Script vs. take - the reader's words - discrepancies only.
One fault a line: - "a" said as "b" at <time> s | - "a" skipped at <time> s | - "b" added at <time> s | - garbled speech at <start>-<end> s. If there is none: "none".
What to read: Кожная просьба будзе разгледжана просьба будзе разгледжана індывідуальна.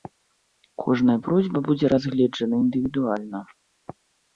- "просьба будзе разгледжана" skipped at 2.5 s